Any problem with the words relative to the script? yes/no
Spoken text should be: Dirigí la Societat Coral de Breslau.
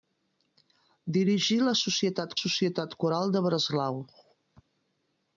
yes